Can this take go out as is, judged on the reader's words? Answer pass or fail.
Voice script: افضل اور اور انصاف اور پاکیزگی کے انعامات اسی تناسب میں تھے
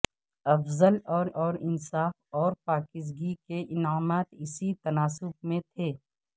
pass